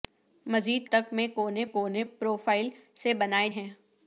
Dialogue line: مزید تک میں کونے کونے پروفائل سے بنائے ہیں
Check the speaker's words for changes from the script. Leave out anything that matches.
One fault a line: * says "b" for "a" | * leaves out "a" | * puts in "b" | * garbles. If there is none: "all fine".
all fine